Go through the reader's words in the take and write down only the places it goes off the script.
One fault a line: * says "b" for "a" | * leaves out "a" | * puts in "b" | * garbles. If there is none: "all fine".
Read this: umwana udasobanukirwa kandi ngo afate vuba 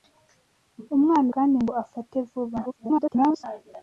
* leaves out "udasobanukirwa"
* garbles